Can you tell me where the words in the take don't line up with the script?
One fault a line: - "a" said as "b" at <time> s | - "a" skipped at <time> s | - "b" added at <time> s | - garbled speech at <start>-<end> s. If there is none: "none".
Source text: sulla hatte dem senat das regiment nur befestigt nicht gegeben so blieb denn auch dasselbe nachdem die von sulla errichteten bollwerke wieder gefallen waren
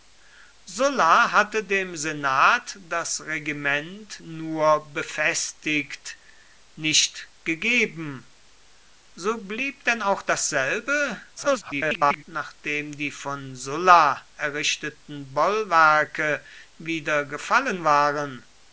- garbled speech at 11.4-12.2 s